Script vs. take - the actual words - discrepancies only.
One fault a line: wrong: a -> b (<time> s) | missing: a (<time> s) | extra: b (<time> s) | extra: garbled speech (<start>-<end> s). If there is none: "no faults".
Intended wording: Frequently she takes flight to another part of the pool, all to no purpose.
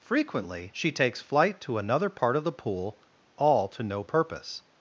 no faults